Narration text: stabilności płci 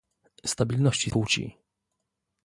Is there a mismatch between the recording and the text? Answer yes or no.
no